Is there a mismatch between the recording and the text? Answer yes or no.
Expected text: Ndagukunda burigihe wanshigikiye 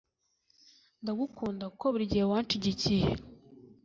yes